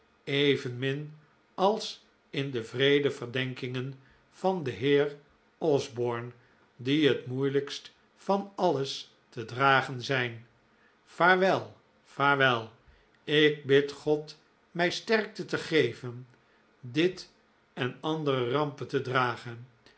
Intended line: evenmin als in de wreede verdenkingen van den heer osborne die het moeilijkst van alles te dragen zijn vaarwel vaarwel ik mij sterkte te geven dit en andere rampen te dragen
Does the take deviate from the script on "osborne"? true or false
false